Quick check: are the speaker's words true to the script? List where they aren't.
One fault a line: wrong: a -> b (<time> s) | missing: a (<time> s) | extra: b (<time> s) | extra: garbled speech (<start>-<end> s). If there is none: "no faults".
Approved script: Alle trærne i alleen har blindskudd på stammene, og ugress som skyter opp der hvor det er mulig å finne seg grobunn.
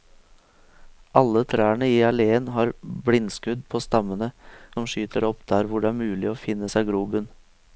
missing: og ugress (4.3 s)